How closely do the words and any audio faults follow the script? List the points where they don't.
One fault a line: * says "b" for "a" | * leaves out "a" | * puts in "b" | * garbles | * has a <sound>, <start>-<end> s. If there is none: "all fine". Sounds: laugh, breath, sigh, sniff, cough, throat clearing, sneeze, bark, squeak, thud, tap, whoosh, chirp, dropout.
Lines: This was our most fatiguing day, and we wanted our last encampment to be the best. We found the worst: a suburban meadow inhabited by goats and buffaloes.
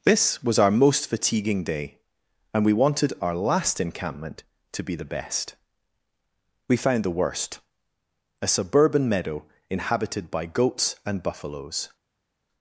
all fine